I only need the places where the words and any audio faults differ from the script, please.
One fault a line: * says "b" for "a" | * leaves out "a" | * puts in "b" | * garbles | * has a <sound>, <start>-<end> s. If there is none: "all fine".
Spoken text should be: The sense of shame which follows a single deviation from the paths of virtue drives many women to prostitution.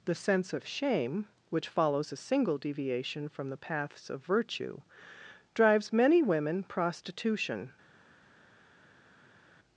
* leaves out "to"